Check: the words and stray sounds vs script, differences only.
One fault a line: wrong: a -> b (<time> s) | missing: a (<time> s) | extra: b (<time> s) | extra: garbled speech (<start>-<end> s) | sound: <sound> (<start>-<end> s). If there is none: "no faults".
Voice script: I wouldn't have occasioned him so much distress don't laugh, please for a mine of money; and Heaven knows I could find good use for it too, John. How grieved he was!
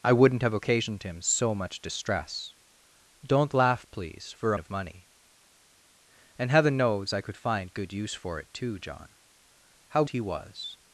missing: mine (4.6 s)
missing: grieved (10.0 s)